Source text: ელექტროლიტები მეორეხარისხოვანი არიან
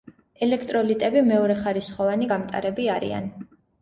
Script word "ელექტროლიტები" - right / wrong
right